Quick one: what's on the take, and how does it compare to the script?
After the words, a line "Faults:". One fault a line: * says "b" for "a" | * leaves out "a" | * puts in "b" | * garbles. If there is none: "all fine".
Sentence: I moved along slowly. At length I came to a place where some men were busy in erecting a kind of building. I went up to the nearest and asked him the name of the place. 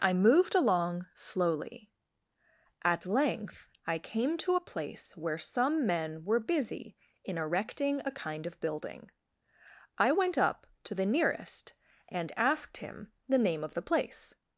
I moved along slowly. At length I came to a place where some men were busy in erecting a kind of building. I went up to the nearest and asked him the name of the place.
Faults:
all fine